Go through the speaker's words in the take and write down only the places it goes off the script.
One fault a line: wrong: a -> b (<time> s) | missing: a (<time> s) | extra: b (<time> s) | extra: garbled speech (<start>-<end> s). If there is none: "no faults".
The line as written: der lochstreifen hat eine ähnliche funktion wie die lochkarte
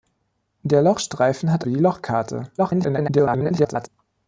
missing: eine ähnliche funktion (1.6 s)
extra: garbled speech (2.6-3.9 s)